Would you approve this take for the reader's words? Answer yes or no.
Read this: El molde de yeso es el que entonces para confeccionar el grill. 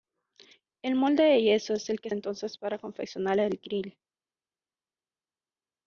yes